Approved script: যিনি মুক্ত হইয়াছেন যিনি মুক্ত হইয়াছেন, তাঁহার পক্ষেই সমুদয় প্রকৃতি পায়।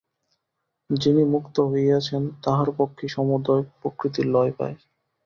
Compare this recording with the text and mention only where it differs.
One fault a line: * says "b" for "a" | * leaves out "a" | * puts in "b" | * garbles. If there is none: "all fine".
* leaves out "যিনি মুক্ত হইয়াছেন"
* puts in "লয়"